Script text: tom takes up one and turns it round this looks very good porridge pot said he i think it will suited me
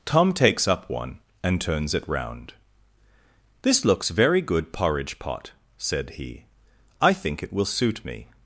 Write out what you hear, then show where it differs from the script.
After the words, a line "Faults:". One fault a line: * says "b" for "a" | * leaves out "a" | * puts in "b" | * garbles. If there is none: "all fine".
tom takes up one and turns it round this looks very good porridge pot said he i think it will suit me
Faults:
* says "suit" for "suited"